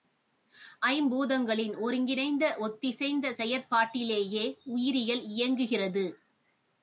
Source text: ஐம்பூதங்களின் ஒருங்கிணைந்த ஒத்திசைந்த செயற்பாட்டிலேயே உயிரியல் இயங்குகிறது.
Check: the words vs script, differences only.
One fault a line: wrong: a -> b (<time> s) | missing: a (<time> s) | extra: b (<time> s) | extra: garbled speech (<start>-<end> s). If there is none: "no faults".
no faults